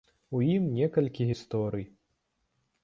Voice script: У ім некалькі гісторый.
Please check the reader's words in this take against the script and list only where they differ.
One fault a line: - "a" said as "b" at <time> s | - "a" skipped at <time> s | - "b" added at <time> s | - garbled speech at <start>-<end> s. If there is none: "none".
none